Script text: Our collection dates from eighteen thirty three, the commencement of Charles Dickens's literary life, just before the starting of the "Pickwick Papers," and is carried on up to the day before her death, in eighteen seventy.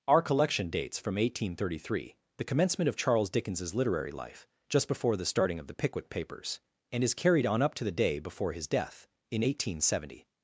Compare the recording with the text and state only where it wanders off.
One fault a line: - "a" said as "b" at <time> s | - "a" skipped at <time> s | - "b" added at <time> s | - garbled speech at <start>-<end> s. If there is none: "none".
- "her" said as "his" at 8.5 s